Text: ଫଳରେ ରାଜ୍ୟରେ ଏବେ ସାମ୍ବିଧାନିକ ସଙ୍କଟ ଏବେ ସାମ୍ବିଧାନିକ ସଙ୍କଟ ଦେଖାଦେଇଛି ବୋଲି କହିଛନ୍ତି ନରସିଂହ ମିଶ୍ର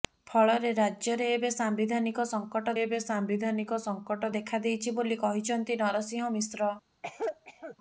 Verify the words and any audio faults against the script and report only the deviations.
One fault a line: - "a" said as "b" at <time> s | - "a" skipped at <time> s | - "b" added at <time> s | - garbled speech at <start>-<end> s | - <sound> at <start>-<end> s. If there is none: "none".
- cough at 7.0-7.8 s